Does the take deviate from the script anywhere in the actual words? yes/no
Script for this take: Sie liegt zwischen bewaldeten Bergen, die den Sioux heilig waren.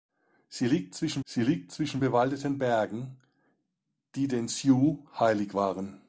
yes